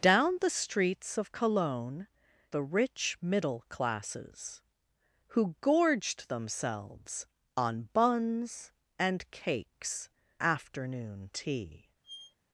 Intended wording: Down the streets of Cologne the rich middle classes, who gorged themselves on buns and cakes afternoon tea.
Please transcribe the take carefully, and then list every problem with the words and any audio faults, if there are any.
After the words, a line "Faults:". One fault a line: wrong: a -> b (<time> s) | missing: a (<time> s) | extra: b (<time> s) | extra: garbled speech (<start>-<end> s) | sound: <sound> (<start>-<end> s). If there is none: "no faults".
Down the streets of Cologne the rich middle classes, who gorged themselves on buns and cakes afternoon tea.
Faults:
sound: squeak (12.0-12.4 s)